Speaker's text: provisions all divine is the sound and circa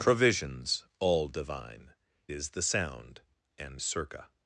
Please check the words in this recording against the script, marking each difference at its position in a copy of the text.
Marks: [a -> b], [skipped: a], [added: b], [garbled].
provisions all divine is the sound and circa